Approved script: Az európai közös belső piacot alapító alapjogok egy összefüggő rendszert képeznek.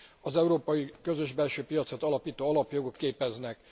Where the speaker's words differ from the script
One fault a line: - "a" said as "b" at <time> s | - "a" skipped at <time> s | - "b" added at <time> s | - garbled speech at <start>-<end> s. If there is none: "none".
- "egy összefüggő rendszert" skipped at 3.0 s